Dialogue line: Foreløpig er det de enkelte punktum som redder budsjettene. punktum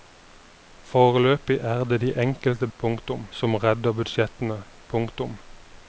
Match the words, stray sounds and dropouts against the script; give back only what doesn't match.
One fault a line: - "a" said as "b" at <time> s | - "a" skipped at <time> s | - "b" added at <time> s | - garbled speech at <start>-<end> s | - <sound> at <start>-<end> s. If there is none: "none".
none